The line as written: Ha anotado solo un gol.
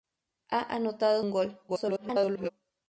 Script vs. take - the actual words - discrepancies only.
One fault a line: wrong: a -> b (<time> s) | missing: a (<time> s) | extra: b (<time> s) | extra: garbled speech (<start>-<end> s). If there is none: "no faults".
missing: solo (1.2 s)
extra: garbled speech (1.7-2.5 s)